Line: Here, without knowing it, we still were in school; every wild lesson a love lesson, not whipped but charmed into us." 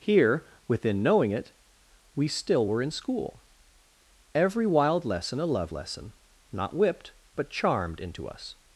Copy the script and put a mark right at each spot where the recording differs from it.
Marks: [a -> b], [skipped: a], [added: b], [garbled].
Here, [without -> within] knowing it, we still were in school; every wild lesson a love lesson, not whipped but charmed into us."